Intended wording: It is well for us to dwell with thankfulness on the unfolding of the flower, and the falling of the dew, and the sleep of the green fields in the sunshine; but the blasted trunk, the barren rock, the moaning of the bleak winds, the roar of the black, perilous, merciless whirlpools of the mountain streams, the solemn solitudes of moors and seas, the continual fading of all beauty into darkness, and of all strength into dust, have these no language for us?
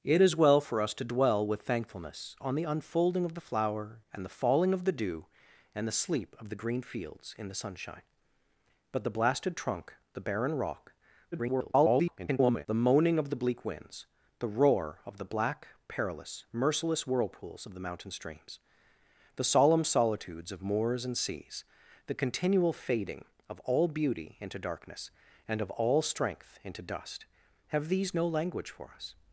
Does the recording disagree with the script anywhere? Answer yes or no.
yes